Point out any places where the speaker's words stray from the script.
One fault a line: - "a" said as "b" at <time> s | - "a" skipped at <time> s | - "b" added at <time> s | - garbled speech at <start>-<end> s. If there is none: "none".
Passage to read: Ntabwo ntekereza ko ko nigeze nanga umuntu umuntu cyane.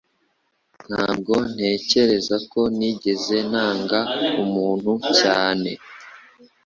- "ko" skipped at 2.6 s
- "umuntu" skipped at 4.9 s